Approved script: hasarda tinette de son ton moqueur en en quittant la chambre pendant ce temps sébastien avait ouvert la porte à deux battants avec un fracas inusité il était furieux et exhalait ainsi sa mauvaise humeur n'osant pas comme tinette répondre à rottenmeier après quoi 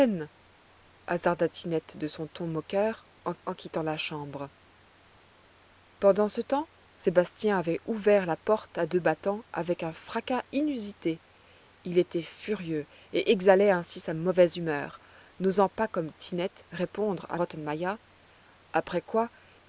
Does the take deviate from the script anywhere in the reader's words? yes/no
no